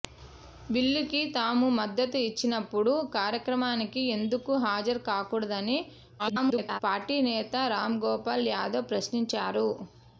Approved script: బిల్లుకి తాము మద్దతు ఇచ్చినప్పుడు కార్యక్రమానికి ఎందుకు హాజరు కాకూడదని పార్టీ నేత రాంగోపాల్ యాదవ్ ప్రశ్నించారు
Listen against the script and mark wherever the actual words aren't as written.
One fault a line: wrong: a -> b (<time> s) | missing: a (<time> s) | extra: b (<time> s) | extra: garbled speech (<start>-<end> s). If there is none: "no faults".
extra: garbled speech (6.2-6.8 s)